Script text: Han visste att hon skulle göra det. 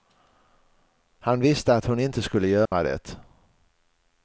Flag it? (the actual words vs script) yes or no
yes